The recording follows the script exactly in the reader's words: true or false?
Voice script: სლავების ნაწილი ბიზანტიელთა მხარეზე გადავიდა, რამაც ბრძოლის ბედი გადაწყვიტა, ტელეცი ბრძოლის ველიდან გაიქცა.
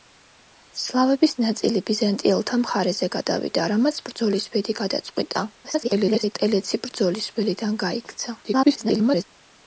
false